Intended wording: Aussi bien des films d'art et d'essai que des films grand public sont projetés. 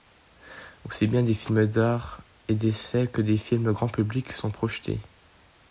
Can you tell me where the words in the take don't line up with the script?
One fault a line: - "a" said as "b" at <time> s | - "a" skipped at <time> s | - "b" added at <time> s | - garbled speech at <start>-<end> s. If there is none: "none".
none